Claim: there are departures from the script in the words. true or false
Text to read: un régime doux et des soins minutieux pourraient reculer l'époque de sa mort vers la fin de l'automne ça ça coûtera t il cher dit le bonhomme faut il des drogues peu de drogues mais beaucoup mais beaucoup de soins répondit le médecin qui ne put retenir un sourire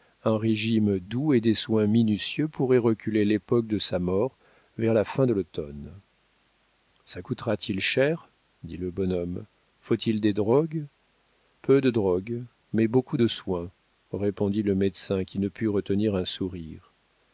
true